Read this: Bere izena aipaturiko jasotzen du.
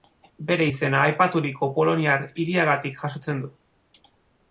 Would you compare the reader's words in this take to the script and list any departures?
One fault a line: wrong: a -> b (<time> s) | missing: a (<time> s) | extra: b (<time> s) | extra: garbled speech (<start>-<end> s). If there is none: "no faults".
extra: poloniar hiriagatik (1.8 s)